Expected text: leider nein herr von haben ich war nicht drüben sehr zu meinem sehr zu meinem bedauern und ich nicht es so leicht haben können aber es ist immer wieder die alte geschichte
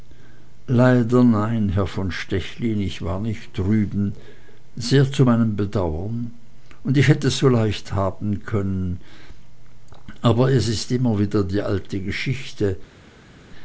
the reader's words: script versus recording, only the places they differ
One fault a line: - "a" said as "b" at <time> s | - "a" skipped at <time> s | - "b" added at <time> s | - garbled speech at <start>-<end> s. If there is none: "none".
- "haben" said as "stechlin" at 2.1 s
- "sehr zu meinem" skipped at 5.6 s
- "nicht" said as "hätt" at 7.1 s